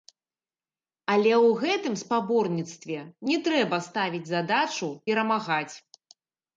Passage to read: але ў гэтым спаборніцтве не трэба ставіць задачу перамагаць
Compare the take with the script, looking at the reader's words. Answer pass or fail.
pass